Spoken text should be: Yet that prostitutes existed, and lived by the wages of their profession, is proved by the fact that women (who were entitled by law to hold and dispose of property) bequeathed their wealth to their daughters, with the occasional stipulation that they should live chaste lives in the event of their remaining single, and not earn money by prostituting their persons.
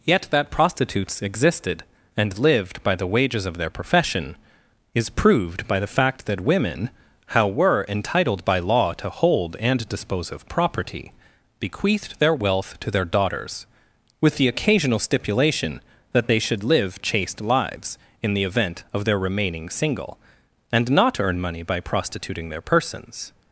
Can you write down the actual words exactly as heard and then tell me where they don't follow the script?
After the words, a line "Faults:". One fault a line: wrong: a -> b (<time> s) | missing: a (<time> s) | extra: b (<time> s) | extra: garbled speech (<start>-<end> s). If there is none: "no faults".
Yet that prostitutes existed, and lived by the wages of their profession, is proved by the fact that women (how were entitled by law to hold and dispose of property) bequeathed their wealth to their daughters, with the occasional stipulation that they should live chaste lives in the event of their remaining single, and not earn money by prostituting their persons.
Faults:
wrong: who -> how (7.3 s)